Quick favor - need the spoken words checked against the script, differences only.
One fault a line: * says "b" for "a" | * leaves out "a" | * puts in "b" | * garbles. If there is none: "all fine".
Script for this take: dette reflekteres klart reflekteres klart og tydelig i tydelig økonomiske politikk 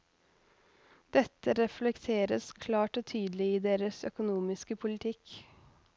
* leaves out "reflekteres klart"
* says "deres" for "tydelig"